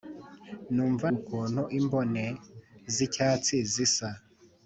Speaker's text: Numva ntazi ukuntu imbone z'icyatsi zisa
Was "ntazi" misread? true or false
true